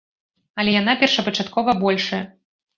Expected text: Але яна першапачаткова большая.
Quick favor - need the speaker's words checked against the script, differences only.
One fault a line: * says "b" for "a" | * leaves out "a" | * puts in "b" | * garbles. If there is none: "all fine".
all fine